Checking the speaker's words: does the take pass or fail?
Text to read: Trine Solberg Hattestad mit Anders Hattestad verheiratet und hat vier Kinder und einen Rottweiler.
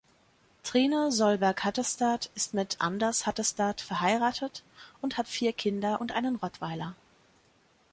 fail